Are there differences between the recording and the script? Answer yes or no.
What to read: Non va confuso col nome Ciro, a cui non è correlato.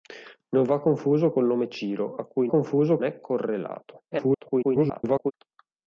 yes